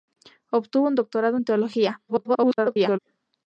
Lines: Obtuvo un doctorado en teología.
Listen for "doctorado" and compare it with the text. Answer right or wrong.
right